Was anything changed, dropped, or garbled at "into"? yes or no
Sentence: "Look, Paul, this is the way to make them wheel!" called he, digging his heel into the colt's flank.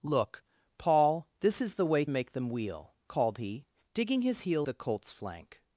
yes